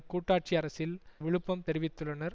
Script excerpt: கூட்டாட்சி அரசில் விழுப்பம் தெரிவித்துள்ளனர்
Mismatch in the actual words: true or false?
false